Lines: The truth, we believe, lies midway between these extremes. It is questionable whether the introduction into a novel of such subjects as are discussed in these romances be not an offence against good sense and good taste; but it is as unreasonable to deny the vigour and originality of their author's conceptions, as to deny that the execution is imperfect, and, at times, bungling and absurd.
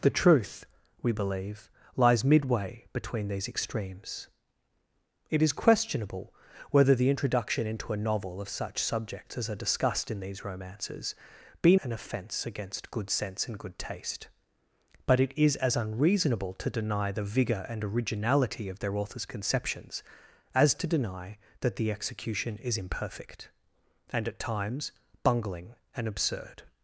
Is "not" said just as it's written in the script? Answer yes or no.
no